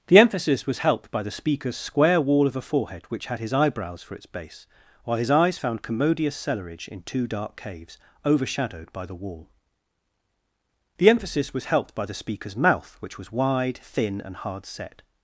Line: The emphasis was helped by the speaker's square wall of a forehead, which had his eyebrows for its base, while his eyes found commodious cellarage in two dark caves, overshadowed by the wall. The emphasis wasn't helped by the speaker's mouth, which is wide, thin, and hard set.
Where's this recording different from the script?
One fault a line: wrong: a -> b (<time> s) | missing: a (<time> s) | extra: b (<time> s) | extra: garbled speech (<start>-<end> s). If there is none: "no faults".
wrong: wasn't -> was (11.5 s)
wrong: is -> was (13.2 s)